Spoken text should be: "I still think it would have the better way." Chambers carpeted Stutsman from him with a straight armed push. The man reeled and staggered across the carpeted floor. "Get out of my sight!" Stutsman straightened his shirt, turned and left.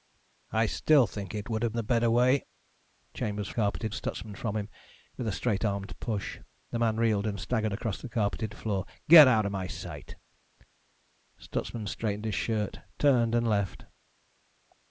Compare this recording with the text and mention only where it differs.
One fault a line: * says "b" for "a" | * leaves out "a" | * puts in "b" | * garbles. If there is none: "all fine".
all fine